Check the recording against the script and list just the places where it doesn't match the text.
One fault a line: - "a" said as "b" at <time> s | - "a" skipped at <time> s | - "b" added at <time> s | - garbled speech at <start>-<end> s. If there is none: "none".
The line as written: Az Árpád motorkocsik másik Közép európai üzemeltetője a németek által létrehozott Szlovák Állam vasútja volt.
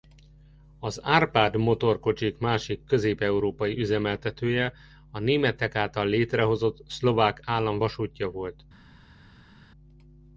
none